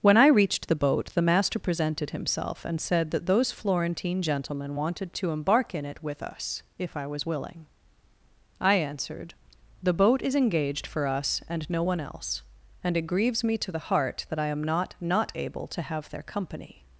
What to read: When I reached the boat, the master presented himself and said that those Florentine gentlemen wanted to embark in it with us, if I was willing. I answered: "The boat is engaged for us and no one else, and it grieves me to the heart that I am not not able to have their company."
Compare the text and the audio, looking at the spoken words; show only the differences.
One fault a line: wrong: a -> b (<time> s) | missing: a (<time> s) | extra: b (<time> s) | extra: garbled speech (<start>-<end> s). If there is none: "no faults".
no faults